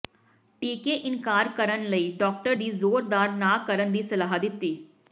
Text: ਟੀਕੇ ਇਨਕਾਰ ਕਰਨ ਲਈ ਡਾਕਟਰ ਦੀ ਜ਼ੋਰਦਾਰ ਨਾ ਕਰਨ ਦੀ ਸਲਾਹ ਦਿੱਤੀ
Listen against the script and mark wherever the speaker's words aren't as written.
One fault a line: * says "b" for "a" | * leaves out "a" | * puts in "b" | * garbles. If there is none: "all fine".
all fine